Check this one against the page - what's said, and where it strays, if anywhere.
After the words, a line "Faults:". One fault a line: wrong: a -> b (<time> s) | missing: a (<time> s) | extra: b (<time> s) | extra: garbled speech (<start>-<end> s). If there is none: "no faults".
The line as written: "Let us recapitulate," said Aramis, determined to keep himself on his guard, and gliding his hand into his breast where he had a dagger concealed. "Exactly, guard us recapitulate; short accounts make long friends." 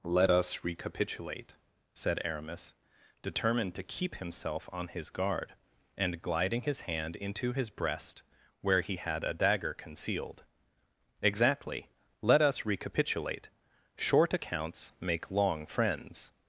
"Let us recapitulate," said Aramis, determined to keep himself on his guard, and gliding his hand into his breast where he had a dagger concealed. "Exactly, let us recapitulate; short accounts make long friends."
Faults:
wrong: guard -> let (12.2 s)